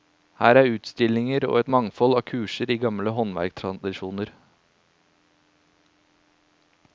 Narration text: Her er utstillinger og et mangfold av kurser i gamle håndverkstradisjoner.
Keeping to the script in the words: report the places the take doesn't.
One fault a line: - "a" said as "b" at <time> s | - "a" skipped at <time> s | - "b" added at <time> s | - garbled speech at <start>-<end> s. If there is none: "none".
none